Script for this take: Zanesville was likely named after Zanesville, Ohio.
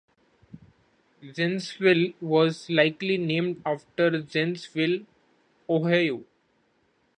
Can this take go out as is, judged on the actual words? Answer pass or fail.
pass